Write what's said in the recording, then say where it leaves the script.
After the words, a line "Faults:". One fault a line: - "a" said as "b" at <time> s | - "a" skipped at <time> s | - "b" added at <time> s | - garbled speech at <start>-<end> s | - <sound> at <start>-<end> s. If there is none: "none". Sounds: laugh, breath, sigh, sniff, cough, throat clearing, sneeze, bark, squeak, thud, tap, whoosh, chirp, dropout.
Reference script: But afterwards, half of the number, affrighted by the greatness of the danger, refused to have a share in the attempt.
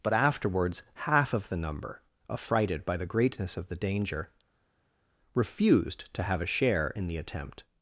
But afterwards, half of the number, affrighted by the greatness of the danger, refused to have a share in the attempt.
Faults:
none